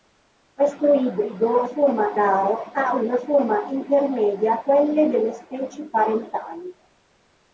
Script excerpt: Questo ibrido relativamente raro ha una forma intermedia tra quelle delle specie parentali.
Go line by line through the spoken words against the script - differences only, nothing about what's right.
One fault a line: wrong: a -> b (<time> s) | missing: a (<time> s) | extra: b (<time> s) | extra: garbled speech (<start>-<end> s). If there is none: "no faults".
wrong: relativamente -> forma (1.6 s)
missing: tra (4.6 s)